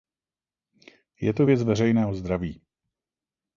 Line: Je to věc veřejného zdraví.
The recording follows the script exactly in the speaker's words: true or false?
true